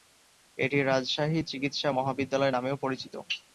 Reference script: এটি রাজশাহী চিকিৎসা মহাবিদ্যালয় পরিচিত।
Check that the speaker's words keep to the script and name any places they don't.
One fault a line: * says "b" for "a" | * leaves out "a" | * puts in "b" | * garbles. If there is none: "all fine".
* puts in "নামেও"